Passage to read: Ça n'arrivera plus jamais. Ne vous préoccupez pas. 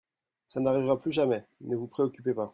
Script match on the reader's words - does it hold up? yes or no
yes